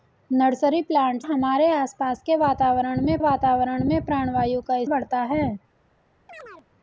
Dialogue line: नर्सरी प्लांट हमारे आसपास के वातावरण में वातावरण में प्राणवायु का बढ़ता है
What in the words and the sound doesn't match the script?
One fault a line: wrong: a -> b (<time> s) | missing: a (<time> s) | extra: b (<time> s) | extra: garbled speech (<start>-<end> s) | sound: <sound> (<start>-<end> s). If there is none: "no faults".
sound: chirp (6.3-6.7 s)